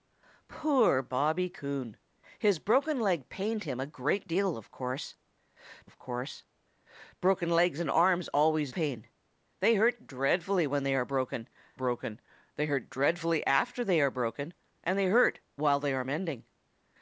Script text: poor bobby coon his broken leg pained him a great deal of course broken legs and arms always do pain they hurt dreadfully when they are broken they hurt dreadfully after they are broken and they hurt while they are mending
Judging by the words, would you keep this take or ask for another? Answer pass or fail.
fail